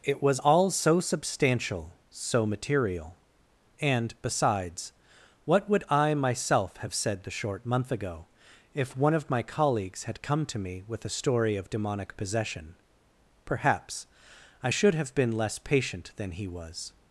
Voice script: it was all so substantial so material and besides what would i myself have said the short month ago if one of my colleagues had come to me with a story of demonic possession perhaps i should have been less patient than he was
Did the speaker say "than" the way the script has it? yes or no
yes